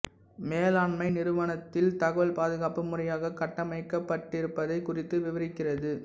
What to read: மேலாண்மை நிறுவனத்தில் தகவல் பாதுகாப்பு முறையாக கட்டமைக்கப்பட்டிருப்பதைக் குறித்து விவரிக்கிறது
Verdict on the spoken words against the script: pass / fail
pass